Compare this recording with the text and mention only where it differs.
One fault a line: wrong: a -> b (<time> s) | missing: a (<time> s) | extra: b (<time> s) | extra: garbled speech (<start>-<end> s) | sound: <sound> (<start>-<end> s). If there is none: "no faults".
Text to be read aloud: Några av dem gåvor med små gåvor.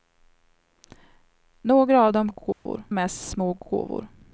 sound: dropout (2.5-2.7 s)